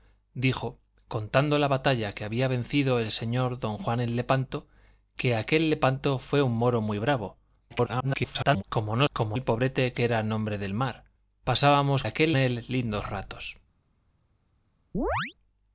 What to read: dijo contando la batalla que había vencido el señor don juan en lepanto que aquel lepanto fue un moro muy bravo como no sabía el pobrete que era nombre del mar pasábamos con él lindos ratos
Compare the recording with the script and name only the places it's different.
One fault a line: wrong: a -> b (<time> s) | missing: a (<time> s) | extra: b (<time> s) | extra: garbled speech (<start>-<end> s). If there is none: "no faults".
extra: garbled speech (7.7-8.6 s)
wrong: sabía -> como (9.1 s)
wrong: con -> aquel (12.0 s)